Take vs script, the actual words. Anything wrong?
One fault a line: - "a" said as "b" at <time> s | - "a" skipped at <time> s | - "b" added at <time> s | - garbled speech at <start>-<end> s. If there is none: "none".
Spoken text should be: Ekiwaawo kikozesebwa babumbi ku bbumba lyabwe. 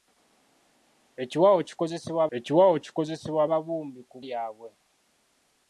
- "ekiwaawo kikozesebwa" added at 2.4 s
- "bbumba" skipped at 4.2 s